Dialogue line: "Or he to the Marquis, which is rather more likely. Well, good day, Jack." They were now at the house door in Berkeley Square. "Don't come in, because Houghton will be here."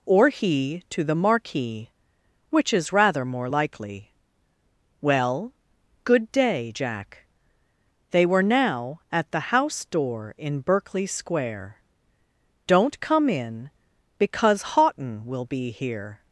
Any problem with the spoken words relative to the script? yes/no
no